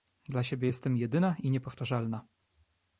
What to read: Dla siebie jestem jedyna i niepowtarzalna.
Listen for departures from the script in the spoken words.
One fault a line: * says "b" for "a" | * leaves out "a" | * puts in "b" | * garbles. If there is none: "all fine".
all fine